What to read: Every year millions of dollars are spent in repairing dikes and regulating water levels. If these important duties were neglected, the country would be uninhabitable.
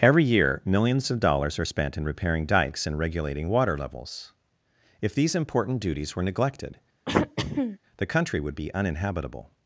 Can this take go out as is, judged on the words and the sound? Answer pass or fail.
fail